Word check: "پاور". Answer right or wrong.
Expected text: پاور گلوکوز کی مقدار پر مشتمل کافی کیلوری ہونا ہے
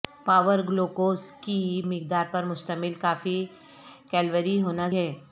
right